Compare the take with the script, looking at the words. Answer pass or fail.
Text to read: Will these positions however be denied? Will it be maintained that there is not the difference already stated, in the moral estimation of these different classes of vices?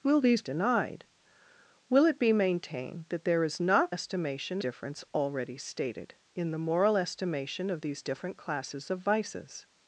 fail